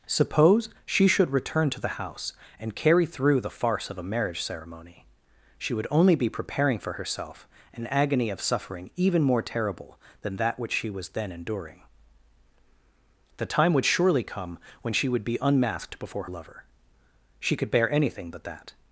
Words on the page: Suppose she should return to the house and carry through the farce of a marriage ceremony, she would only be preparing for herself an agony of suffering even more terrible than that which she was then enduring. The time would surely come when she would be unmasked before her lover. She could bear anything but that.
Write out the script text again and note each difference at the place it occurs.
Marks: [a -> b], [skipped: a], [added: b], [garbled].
Suppose she should return to the house and carry through the farce of a marriage ceremony, she would only be preparing for herself an agony of suffering even more terrible than that which she was then enduring. The time would surely come when she would be unmasked before [skipped: her] lover. She could bear anything but that.